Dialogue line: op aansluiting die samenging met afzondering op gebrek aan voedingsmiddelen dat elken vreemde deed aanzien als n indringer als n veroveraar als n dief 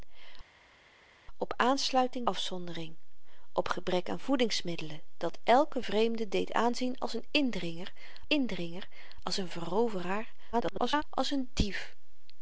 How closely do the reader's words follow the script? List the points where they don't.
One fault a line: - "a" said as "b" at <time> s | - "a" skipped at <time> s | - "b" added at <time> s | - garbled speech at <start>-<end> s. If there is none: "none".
- "die samenging met" skipped at 2.3 s
- "indringer" added at 8.3 s
- garbled speech at 10.5-11.0 s